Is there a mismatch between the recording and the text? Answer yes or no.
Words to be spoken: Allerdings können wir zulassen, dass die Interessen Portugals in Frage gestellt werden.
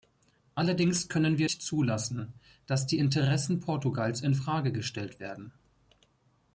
no